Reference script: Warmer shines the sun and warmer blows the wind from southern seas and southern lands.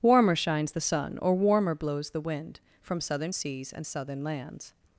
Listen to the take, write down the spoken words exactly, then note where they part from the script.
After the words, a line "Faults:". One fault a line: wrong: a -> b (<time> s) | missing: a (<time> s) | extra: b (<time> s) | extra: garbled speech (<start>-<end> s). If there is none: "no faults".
Warmer shines the sun or warmer blows the wind from southern seas and southern lands.
Faults:
wrong: and -> or (1.2 s)